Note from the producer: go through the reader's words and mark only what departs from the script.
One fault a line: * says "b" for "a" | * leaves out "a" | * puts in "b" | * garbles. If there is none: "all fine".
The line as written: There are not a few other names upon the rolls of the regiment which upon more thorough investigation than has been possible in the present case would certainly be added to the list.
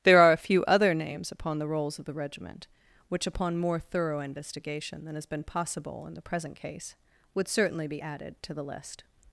* leaves out "not"